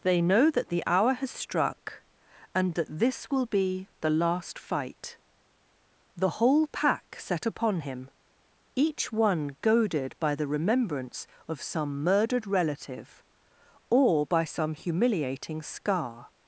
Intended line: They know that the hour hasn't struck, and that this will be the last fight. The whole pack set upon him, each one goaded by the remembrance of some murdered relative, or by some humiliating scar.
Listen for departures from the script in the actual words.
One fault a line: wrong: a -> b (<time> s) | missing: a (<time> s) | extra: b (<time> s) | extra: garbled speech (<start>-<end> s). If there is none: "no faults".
wrong: hasn't -> has (1.1 s)